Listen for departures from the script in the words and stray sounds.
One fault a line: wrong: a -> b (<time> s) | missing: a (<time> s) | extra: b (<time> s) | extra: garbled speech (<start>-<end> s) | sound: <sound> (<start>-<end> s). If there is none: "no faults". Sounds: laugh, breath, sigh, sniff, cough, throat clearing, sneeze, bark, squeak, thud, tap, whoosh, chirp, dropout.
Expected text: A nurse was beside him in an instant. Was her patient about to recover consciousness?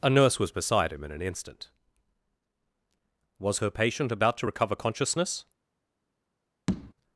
sound: tap (6.7-6.9 s)